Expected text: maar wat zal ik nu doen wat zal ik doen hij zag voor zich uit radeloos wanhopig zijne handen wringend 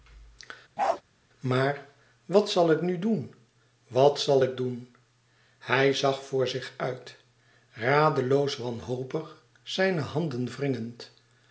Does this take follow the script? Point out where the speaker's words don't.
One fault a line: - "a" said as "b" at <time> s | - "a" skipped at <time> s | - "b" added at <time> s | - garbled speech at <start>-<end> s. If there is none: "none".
none